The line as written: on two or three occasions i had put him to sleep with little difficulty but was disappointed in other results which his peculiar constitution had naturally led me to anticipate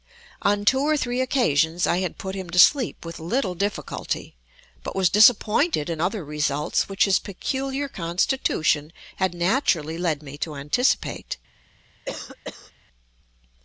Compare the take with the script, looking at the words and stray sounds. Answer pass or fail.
fail